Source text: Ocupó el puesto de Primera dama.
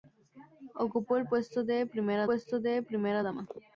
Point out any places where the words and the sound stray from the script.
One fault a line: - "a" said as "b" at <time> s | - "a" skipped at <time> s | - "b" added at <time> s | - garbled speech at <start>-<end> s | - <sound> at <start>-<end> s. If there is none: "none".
- "puesto de Primera" added at 2.2 s